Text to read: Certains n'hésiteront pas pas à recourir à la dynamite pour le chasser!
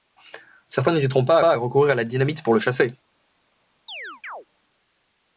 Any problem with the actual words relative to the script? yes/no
no